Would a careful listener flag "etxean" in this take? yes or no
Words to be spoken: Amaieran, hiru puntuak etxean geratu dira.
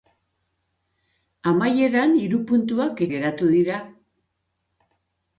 yes